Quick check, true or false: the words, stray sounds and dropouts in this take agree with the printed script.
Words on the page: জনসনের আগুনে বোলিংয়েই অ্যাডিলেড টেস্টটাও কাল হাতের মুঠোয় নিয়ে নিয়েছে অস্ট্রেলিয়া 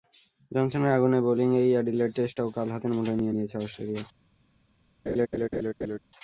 false